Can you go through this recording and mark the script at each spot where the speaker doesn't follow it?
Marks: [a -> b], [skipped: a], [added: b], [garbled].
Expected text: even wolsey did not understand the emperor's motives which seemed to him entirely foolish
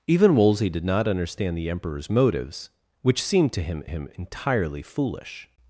even wolsey did not understand the emperor's motives which seemed to him [added: him] entirely foolish